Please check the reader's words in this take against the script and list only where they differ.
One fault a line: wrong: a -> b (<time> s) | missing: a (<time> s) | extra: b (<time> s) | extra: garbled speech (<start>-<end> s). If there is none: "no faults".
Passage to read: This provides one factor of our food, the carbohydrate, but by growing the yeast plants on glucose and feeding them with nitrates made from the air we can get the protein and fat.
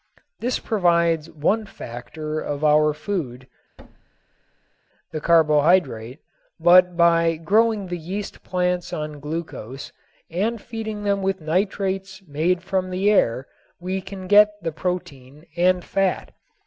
no faults